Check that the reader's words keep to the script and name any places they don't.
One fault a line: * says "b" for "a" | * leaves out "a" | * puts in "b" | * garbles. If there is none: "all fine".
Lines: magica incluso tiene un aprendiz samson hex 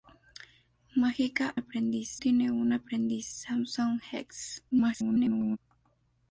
* says "aprendiz" for "incluso"
* garbles